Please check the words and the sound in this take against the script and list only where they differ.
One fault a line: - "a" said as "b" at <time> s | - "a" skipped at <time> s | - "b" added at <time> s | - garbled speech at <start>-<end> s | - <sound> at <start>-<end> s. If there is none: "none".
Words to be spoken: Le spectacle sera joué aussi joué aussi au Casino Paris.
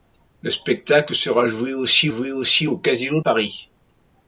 none